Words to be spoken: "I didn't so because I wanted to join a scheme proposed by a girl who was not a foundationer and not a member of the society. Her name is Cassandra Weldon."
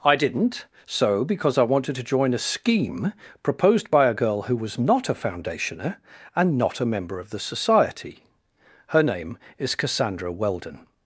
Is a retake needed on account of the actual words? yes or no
no